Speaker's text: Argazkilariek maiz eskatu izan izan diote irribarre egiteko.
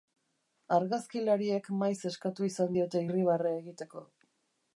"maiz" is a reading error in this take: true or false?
false